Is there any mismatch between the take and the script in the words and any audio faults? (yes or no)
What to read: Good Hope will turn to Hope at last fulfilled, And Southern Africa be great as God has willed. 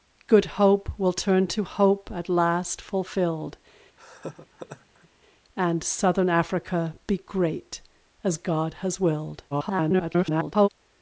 yes